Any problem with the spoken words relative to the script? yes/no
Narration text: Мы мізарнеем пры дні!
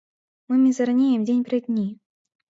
yes